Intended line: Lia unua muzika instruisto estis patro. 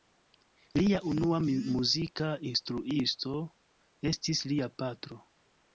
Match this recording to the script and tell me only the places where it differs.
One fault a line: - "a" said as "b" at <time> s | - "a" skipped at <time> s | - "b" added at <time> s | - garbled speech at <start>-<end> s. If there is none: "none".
- "lia" added at 4.5 s